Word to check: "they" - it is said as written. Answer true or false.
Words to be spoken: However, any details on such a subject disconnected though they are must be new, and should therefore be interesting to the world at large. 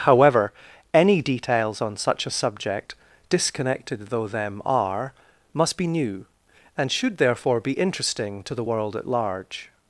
false